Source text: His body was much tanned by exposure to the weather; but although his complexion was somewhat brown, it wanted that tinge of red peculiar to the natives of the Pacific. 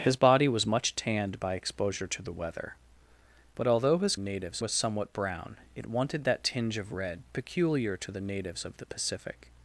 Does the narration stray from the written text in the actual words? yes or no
yes